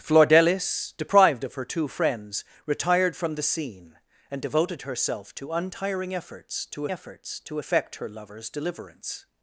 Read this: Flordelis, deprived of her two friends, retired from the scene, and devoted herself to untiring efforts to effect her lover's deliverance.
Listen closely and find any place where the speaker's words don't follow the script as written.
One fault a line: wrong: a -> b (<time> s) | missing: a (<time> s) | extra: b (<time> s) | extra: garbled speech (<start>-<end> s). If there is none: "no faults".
extra: efforts to (6.9 s)